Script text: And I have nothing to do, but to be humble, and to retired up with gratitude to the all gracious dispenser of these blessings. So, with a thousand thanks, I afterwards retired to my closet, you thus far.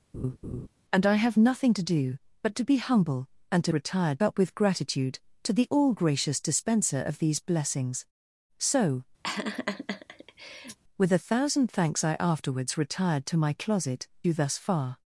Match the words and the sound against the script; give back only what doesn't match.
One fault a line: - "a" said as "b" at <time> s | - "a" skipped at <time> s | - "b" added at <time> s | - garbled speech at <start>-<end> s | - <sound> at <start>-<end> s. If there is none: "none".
- laugh at 0.1-0.7 s
- laugh at 9.2-10.8 s